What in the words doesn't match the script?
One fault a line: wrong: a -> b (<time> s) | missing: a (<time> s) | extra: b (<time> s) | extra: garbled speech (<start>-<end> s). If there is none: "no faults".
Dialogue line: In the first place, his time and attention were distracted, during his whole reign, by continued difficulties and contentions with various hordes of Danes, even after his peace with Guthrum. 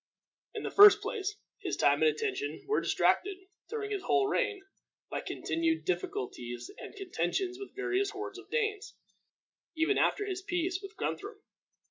no faults